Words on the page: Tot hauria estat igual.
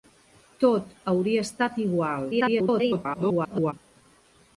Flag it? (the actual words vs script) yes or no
yes